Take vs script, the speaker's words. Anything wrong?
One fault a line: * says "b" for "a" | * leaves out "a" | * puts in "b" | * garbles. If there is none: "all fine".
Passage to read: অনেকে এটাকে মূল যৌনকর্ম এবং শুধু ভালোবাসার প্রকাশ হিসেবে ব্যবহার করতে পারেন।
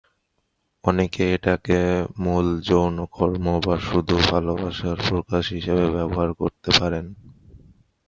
* says "বা" for "এবং"